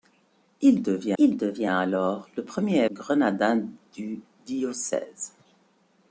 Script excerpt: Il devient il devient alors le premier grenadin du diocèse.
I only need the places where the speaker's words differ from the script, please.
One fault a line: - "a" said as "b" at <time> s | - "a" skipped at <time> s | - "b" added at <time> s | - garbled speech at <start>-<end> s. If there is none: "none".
none